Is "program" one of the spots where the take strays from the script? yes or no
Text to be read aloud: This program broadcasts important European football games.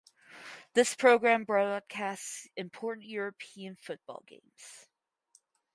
no